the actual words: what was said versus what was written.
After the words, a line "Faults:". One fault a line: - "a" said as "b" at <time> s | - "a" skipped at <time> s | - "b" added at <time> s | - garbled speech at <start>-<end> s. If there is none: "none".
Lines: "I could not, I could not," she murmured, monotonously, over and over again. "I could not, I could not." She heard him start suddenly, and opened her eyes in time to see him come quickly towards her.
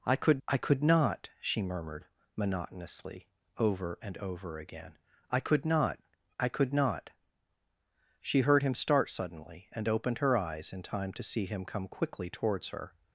"I could I could not," she murmured, monotonously, over and over again. "I could not, I could not." She heard him start suddenly, and opened her eyes in time to see him come quickly towards her.
Faults:
- "not" skipped at 0.4 s